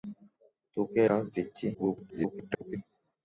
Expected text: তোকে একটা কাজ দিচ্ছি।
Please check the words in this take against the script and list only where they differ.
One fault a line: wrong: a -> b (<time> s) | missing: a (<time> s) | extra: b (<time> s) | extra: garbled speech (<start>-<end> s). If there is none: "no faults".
missing: একটা (1.0 s)
extra: garbled speech (1.7-2.8 s)